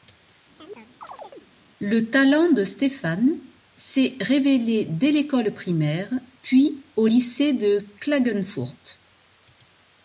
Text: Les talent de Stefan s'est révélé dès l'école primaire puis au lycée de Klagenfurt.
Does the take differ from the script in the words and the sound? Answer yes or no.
yes